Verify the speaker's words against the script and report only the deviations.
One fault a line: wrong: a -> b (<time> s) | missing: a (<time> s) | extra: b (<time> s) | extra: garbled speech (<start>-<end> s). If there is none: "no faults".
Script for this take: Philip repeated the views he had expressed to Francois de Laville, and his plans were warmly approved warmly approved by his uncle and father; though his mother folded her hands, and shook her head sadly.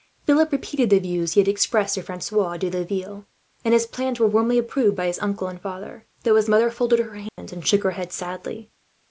missing: warmly approved (5.0 s)